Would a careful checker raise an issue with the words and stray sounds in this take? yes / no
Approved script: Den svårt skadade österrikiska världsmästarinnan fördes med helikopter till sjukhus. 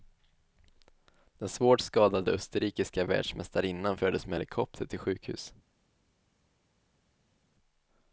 no